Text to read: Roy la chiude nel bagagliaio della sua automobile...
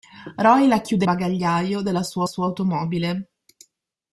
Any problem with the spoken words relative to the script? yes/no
yes